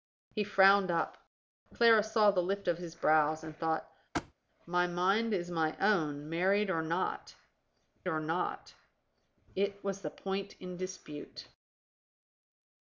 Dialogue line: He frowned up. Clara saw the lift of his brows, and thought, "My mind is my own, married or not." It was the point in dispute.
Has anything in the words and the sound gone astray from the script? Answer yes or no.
yes